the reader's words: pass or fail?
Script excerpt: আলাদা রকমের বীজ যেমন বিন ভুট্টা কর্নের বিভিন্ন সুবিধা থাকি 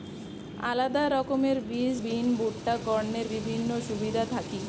fail